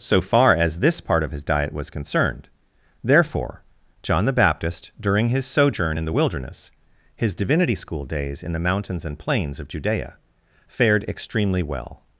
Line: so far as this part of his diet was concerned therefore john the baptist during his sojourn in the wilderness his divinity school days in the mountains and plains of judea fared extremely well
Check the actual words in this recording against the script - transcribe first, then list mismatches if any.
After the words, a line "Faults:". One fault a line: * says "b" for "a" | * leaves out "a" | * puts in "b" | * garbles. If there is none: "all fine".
so far as this part of his diet was concerned therefore john the baptist during his sojourn in the wilderness his divinity school days in the mountains and plains of judea fared extremely well
Faults:
all fine